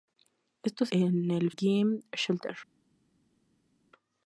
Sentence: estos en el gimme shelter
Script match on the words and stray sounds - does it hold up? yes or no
yes